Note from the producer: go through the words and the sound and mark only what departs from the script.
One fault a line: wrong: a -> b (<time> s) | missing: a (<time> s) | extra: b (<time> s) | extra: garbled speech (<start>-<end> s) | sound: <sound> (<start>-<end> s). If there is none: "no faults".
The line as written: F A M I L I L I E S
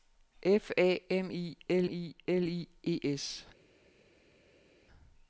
no faults